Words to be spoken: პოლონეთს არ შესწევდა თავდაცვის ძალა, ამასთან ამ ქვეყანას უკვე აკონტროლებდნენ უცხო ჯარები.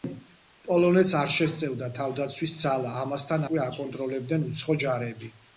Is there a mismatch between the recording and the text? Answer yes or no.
yes